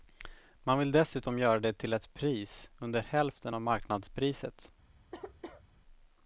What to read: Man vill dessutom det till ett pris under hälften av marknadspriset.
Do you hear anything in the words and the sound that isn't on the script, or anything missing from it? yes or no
yes